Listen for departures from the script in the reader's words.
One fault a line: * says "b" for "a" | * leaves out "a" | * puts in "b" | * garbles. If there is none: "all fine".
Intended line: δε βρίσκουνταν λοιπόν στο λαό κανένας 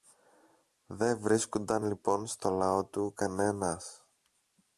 * puts in "του"